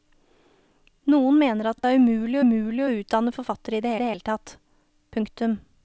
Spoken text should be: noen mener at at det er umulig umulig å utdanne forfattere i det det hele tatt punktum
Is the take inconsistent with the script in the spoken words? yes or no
no